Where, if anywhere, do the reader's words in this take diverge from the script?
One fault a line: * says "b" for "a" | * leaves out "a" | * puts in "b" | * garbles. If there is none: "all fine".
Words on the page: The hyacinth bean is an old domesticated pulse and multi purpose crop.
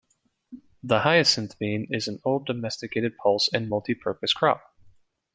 all fine